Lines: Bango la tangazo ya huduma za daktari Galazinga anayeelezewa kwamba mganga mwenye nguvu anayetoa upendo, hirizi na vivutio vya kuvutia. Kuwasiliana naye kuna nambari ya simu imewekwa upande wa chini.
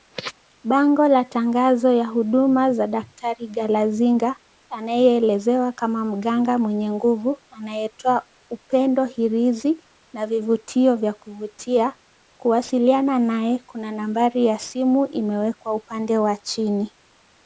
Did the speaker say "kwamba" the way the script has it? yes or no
no